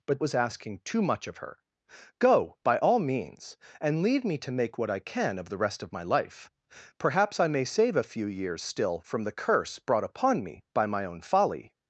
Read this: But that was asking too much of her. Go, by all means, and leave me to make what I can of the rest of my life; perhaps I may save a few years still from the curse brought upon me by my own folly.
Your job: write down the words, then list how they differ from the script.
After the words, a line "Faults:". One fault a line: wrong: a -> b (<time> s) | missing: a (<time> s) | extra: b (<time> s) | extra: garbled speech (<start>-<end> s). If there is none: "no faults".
But was asking too much of her. Go, by all means, and leave me to make what I can of the rest of my life; perhaps I may save a few years still from the curse brought upon me by my own folly.
Faults:
missing: that (0.2 s)